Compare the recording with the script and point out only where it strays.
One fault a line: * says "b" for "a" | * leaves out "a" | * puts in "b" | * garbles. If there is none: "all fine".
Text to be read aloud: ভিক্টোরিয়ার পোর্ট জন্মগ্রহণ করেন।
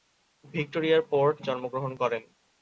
all fine